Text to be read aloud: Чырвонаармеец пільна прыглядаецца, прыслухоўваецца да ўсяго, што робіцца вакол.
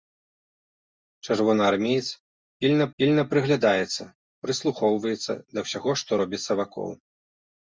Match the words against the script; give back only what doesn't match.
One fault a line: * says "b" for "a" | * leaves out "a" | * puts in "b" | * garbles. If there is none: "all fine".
* puts in "пільна"